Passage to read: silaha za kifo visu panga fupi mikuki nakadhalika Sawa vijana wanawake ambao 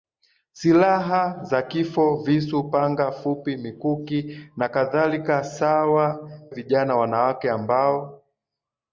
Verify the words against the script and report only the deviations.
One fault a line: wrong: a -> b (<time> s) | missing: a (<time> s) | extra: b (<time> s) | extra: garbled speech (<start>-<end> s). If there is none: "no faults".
no faults